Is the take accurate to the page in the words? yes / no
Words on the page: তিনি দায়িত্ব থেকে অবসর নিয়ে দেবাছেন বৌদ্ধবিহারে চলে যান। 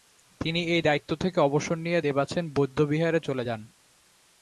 no